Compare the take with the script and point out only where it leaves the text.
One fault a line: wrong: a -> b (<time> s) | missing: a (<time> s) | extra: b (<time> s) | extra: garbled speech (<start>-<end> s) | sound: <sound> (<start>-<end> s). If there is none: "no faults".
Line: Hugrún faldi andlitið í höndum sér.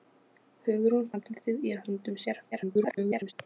missing: faldi (1.1 s)
extra: garbled speech (2.5-3.3 s)